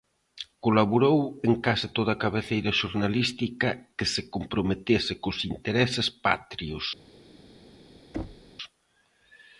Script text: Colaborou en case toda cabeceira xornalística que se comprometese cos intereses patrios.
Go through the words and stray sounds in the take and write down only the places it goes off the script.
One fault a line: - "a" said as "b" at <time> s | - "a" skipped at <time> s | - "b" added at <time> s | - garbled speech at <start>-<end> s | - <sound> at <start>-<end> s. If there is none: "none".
- thud at 8.1-8.5 s